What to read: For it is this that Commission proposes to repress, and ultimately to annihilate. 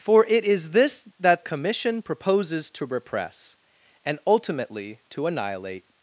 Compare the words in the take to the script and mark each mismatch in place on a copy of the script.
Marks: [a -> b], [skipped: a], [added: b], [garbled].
For it is this that Commission proposes to repress, and ultimately to annihilate.